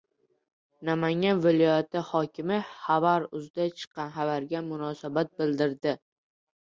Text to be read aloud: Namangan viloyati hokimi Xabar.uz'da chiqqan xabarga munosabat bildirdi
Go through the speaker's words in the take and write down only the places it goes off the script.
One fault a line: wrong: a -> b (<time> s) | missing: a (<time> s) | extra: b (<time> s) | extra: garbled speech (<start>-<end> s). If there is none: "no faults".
no faults